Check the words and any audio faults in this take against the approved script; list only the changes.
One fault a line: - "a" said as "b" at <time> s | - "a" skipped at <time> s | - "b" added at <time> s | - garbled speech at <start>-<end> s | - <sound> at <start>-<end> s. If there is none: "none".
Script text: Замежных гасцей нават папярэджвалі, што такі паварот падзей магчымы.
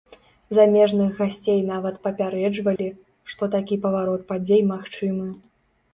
- dropout at 2.8-2.8 s